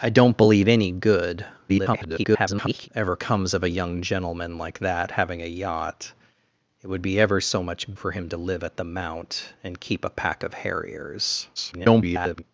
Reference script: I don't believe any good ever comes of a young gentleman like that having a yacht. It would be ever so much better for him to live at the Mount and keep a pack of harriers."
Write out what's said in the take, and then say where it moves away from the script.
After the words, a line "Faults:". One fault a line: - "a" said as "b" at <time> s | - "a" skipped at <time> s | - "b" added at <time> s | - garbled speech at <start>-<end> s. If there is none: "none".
I don't believe any good [garbled] ever comes of a young gentleman like that having a yacht. It would be ever so much for him to live at the Mount and keep a pack of harriers." [garbled]
Faults:
- garbled speech at 1.7-2.9 s
- "better" skipped at 7.9 s
- garbled speech at 11.6-12.4 s